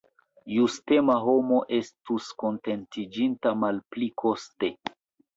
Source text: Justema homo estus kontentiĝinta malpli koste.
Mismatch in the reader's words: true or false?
false